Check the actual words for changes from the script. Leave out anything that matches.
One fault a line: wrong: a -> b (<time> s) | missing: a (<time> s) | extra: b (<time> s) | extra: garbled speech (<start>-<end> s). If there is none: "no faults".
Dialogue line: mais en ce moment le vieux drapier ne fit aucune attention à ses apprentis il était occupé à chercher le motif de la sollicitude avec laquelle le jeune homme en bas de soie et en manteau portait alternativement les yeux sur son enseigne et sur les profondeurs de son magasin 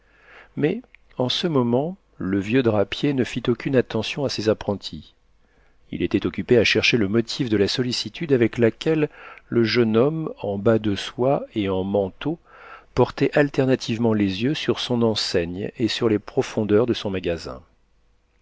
no faults